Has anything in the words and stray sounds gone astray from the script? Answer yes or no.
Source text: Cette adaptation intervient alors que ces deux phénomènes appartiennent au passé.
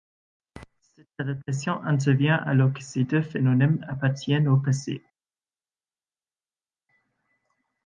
no